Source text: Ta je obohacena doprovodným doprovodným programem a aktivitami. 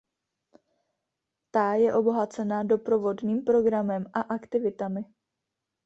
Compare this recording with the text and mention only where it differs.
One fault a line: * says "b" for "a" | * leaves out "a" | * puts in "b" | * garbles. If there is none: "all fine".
* leaves out "doprovodným"